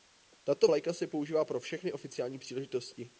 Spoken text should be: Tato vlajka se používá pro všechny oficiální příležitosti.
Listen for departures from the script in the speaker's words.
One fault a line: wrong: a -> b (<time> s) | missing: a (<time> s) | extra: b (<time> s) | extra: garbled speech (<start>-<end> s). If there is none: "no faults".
no faults